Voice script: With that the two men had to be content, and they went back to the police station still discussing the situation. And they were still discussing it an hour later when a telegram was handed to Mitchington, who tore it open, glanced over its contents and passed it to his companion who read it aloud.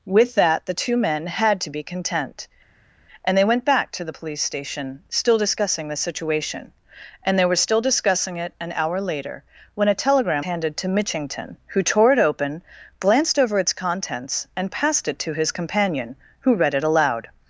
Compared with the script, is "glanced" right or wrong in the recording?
right